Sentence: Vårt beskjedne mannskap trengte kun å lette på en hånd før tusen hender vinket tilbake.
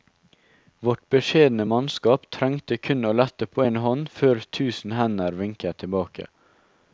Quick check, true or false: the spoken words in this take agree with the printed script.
true